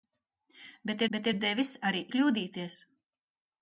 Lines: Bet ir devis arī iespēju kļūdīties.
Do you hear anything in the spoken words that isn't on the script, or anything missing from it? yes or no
yes